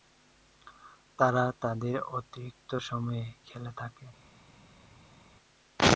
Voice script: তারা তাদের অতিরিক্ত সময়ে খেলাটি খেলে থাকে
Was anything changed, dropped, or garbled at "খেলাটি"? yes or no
yes